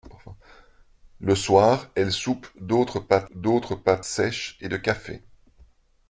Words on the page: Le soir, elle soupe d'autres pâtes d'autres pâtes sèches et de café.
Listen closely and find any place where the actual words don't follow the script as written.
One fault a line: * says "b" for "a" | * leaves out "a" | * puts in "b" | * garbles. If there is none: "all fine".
all fine